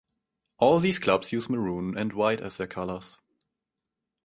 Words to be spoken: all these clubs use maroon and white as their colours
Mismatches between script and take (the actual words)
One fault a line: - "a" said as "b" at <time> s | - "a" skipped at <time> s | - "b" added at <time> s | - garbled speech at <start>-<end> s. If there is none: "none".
none